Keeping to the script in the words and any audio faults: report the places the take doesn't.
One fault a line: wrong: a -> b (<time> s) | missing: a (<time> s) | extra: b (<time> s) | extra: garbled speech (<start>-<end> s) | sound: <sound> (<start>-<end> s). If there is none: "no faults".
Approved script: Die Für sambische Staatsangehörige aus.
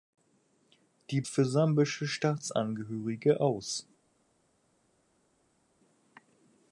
no faults